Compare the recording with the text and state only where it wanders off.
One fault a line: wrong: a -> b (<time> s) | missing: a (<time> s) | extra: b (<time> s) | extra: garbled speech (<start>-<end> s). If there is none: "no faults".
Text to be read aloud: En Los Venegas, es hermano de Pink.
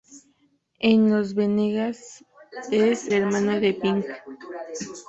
no faults